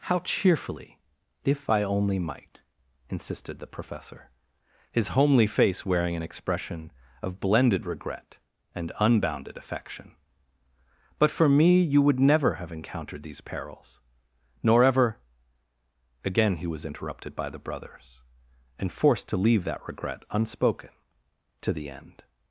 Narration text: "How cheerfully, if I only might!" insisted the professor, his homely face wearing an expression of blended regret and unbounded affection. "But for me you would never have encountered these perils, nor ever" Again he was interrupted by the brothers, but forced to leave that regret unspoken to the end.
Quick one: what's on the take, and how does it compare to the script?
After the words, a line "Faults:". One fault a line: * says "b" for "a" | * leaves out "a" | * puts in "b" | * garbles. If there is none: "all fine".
"How cheerfully, if I only might!" insisted the professor, his homely face wearing an expression of blended regret and unbounded affection. "But for me you would never have encountered these perils, nor ever" Again he was interrupted by the brothers, and forced to leave that regret unspoken to the end.
Faults:
* says "and" for "but"